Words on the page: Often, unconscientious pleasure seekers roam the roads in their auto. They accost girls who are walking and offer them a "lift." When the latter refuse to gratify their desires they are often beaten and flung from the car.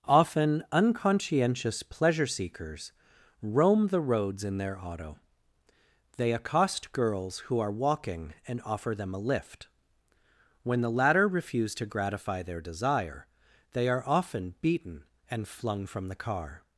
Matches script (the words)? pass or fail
fail